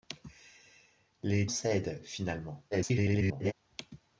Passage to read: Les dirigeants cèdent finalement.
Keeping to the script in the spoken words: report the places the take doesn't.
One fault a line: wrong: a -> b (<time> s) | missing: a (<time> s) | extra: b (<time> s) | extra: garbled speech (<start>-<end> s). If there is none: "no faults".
missing: dirigeants (1.4 s)
extra: garbled speech (2.7-3.5 s)